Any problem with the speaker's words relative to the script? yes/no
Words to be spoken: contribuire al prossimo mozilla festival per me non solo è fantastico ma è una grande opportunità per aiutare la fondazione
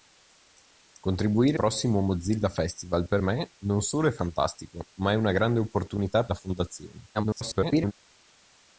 yes